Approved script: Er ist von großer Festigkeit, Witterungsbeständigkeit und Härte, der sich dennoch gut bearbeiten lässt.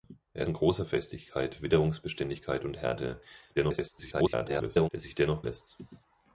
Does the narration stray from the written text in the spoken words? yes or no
yes